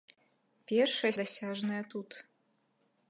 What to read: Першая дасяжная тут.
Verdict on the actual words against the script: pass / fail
pass